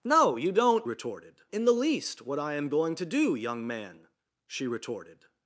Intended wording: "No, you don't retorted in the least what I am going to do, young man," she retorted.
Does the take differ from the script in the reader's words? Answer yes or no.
no